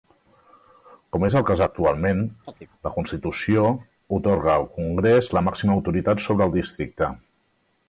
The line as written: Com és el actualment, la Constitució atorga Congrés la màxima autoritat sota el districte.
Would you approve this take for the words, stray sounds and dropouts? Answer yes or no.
no